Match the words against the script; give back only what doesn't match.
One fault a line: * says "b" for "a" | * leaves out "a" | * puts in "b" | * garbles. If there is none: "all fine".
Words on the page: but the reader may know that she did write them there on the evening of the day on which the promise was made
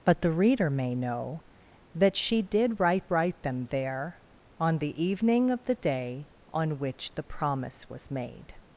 * puts in "write"